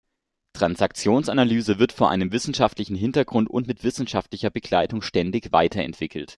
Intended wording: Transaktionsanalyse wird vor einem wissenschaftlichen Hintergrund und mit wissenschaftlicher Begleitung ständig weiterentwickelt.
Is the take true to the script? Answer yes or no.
yes